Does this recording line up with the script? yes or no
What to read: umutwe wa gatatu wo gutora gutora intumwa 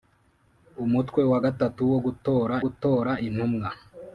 yes